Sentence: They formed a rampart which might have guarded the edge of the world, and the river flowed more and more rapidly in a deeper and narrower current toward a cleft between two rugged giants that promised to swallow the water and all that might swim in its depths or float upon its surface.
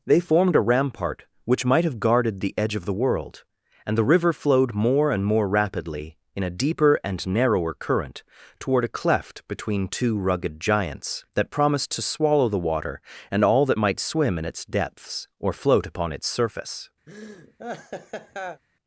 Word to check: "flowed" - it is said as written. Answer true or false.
true